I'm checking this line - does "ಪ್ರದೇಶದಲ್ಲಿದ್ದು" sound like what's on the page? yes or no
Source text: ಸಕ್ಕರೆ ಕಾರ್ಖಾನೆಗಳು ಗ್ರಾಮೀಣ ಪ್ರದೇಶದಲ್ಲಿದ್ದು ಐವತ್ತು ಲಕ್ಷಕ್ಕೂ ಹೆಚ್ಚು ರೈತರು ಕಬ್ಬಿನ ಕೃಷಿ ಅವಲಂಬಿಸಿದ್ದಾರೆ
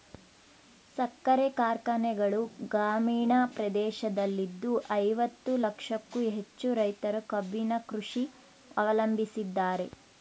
yes